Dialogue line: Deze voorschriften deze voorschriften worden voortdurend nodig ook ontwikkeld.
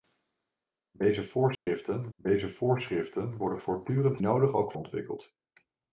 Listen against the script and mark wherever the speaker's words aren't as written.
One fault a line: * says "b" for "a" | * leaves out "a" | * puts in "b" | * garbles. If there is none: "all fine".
all fine